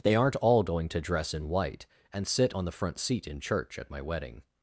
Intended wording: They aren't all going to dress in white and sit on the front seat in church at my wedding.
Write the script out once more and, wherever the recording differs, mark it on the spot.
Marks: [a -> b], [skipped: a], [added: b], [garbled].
They aren't all going to dress in white and sit on the front seat in church at my wedding.